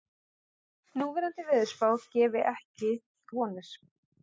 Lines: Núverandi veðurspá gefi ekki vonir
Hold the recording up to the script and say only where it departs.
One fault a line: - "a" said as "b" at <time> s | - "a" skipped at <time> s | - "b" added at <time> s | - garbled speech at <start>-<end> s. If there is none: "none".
none